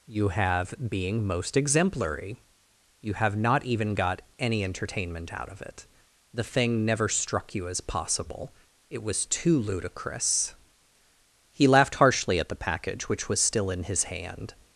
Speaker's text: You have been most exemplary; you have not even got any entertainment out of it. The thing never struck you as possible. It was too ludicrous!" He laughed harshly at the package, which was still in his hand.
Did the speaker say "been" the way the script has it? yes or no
no